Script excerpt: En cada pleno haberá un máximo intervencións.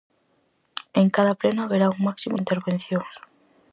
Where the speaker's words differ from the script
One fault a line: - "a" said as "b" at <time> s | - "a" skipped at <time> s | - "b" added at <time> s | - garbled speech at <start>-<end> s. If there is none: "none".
none